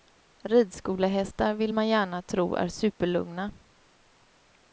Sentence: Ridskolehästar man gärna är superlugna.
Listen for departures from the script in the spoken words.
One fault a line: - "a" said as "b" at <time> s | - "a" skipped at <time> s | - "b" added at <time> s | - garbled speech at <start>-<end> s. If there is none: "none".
- "vill" added at 1.5 s
- "tro" added at 2.2 s